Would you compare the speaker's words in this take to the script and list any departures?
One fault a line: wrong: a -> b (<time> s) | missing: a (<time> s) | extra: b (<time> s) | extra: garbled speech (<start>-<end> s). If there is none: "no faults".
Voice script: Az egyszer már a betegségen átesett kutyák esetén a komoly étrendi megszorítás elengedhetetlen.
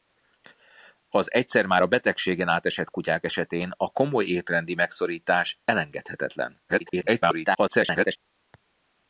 extra: garbled speech (6.7-8.2 s)